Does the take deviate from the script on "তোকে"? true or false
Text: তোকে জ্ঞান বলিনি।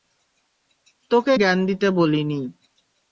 false